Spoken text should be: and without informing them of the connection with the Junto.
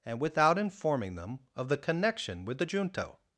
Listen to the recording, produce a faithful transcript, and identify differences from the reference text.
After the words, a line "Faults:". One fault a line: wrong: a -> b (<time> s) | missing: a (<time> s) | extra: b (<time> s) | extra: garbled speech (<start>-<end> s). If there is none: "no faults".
and without informing them of the connection with the Junto.
Faults:
no faults